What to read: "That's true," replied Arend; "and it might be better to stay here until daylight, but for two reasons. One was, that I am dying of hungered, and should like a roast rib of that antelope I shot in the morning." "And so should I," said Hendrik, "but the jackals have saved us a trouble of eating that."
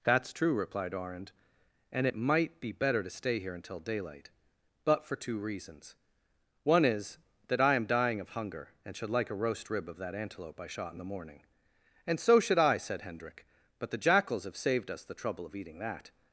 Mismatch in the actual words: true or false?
true